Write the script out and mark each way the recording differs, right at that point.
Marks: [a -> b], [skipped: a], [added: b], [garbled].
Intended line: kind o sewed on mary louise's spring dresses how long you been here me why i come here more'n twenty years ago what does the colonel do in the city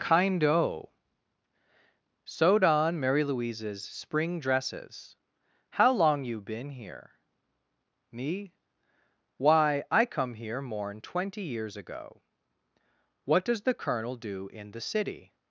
kind o sewed on mary louise's spring dresses how long you been here me why i come here more'n twenty years ago what does the colonel do in the city